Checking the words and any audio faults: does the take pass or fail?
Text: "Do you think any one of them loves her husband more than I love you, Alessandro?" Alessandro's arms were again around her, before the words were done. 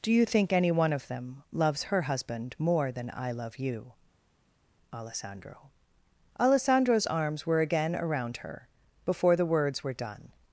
pass